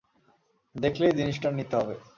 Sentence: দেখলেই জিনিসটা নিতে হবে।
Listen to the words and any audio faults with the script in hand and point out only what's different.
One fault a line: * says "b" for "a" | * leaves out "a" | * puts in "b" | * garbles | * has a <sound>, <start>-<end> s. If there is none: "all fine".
all fine